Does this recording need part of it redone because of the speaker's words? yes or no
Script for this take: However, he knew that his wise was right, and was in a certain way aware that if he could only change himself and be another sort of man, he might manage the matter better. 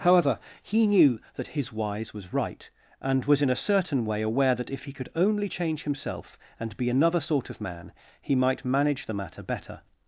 no